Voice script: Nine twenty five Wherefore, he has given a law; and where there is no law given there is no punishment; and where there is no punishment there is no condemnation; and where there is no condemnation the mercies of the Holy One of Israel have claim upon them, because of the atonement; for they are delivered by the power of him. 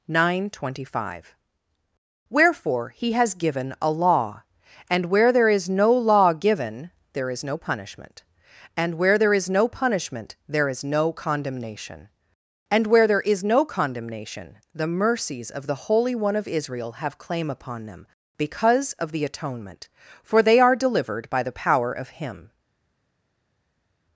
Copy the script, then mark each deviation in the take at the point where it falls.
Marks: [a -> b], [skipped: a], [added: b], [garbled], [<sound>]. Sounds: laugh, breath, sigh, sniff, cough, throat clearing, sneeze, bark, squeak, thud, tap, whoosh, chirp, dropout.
Nine twenty five Wherefore, he has given a law; and where there is no law given there is no punishment; and where there is no punishment there is no condemnation; and where there is no condemnation the mercies of the Holy One of Israel have claim upon them, because of the atonement; for they are delivered by the power of him.